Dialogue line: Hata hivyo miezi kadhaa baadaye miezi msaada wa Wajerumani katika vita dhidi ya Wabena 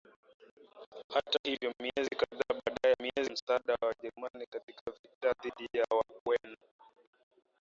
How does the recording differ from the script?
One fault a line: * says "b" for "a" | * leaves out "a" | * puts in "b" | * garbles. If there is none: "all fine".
all fine